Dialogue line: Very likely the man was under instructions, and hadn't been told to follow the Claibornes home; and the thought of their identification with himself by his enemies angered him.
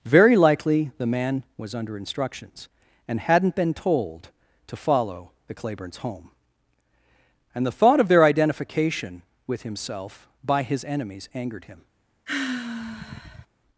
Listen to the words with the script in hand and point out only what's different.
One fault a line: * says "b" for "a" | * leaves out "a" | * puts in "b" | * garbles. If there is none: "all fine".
all fine